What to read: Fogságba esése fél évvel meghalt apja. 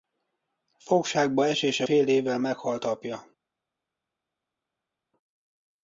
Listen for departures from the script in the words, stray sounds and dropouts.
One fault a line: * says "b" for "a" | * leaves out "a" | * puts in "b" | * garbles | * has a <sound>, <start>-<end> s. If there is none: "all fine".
all fine